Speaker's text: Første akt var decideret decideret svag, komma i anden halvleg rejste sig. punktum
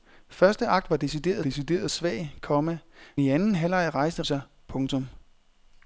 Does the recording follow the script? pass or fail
pass